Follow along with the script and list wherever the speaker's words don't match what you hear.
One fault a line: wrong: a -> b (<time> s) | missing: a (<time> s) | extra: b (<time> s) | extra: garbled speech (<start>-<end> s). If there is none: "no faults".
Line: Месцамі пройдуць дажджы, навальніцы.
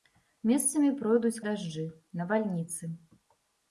no faults